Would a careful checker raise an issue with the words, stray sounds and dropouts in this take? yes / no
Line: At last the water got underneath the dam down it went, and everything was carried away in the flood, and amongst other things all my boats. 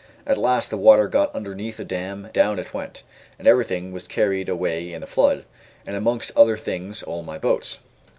no